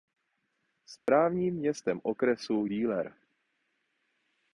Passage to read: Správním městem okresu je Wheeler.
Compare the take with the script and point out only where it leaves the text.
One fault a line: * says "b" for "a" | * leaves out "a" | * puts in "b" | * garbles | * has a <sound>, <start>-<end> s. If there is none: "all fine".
* has a dropout, 1.0-1.1 s
* leaves out "je"